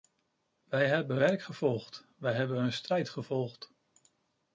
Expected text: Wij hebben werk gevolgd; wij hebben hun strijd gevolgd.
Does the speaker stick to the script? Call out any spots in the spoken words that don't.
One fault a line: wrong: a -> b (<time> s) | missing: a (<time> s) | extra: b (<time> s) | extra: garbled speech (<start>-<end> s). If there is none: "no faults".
no faults